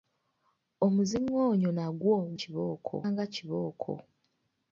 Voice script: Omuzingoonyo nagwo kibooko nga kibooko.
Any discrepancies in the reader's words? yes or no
no